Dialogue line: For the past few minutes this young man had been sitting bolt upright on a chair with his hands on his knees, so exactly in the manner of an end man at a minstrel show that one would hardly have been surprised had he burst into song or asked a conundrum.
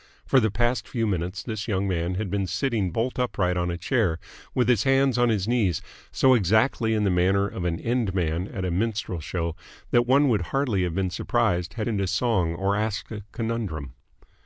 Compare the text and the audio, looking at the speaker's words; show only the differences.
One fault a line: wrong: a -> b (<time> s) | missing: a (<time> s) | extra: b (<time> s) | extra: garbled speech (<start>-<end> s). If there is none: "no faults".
missing: he burst (11.9 s)